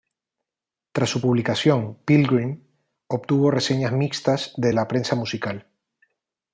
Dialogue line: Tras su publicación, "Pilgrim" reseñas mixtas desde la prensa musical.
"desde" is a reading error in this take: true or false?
true